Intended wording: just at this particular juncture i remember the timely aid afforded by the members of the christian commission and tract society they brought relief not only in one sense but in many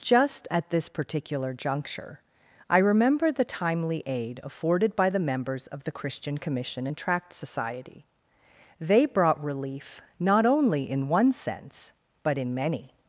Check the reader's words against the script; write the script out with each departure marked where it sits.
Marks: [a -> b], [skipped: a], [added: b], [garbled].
just at this particular juncture i remember the timely aid afforded by the members of the christian commission and tract society they brought relief not only in one sense but in many